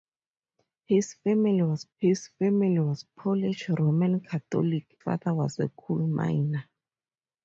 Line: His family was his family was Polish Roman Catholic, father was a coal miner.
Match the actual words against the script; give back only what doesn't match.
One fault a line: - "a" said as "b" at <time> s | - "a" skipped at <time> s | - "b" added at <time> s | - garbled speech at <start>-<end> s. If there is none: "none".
none